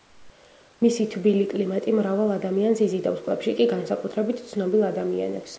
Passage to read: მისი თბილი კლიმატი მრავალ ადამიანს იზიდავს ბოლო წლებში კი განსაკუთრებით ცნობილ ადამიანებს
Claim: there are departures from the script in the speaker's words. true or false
true